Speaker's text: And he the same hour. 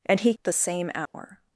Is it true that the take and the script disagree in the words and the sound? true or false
true